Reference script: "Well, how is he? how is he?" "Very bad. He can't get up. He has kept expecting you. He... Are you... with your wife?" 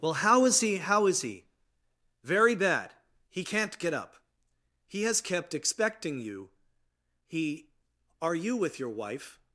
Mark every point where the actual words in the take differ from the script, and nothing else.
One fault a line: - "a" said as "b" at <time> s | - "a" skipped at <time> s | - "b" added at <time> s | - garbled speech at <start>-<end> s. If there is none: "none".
none